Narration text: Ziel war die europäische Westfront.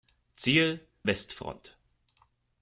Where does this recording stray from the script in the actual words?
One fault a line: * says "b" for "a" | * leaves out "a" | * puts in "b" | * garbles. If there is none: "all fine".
* leaves out "war die europäische"